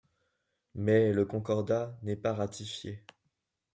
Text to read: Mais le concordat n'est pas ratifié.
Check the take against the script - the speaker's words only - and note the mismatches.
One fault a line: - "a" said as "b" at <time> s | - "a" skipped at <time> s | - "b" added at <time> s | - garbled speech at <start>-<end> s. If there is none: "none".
none